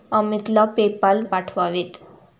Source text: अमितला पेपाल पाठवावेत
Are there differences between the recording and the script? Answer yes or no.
no